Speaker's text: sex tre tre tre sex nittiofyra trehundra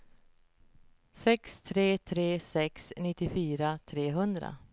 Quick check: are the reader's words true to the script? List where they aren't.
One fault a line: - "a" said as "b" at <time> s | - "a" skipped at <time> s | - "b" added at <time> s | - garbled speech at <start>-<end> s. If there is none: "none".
- "tre" skipped at 2.4 s